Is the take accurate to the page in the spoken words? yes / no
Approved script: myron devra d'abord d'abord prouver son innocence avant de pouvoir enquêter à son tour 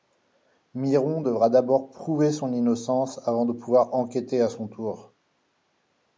no